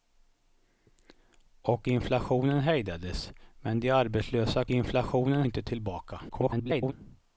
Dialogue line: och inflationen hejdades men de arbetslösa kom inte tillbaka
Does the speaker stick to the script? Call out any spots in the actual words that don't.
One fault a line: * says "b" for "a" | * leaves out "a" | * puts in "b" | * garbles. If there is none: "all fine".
* says "inflationen" for "kom"
* garbles